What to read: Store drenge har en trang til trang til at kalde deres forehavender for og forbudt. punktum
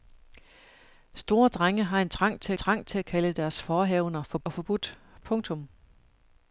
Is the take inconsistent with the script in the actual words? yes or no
no